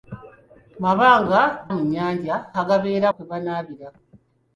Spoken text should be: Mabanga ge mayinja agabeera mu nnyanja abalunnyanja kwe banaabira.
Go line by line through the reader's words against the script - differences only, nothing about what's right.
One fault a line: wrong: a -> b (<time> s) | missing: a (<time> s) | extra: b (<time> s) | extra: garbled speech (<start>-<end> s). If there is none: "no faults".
missing: ge mayinja agabeera (1.4 s)
wrong: abalunnyanja -> agabeera (2.6 s)